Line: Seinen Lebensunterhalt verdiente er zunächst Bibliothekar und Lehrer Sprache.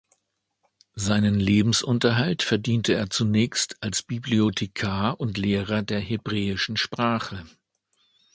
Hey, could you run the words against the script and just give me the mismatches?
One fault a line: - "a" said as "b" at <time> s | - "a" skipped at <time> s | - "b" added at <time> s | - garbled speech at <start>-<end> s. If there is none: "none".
- "als" added at 3.8 s
- "der Hebräischen" added at 5.8 s